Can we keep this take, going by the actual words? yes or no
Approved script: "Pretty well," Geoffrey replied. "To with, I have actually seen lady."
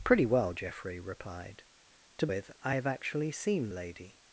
yes